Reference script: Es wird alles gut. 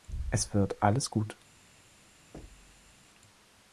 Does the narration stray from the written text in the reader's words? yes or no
no